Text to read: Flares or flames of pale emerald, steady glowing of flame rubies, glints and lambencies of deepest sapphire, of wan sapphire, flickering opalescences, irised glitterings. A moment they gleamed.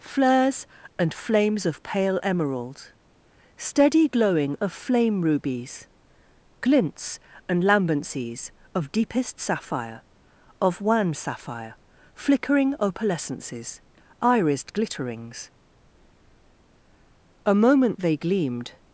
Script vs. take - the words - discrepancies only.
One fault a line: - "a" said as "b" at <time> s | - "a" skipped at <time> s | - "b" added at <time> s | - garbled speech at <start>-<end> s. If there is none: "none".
- "or" said as "and" at 1.0 s